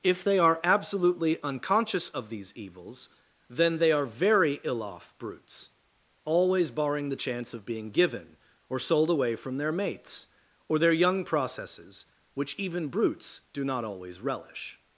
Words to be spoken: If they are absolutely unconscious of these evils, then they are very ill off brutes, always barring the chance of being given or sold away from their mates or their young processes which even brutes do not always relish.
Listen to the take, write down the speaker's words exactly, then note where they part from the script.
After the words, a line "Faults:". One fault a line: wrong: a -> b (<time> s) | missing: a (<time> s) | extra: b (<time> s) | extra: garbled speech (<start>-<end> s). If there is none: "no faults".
If they are absolutely unconscious of these evils, then they are very ill off brutes, always barring the chance of being given or sold away from their mates or their young processes which even brutes do not always relish.
Faults:
no faults